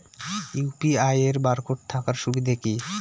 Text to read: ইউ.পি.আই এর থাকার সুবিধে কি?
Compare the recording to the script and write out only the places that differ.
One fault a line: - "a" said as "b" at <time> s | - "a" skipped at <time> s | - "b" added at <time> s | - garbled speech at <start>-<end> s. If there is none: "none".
- "বারকোড" added at 1.4 s